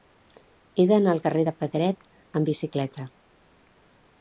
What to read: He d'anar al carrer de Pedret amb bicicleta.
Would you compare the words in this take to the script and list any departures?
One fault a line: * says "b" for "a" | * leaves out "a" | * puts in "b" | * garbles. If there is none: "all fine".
all fine